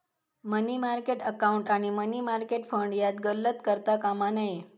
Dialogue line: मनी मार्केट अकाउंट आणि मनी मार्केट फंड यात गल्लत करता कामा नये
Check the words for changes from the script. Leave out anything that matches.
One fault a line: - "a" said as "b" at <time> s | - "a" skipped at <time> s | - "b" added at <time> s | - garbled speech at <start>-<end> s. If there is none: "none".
none